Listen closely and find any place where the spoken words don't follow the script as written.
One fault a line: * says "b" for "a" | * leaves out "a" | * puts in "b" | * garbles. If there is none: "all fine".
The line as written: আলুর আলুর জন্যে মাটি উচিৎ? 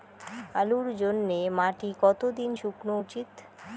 * leaves out "আলুর"
* puts in "কতো দিন শুকনো"